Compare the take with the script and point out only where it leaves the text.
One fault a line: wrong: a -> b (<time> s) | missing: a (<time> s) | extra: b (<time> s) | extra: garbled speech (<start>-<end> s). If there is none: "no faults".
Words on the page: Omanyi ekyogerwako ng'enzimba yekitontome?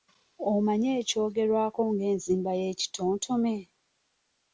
no faults